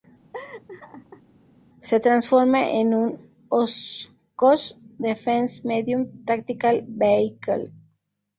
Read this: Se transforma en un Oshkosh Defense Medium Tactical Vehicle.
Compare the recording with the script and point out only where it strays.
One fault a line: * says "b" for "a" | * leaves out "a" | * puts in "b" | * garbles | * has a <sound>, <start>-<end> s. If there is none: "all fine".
* has a laugh, 0.3-1.2 s